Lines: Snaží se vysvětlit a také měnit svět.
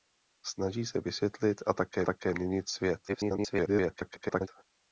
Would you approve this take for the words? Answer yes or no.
no